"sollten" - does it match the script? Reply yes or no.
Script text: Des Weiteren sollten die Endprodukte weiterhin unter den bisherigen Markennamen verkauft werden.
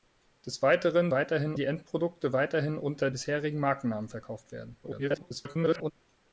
no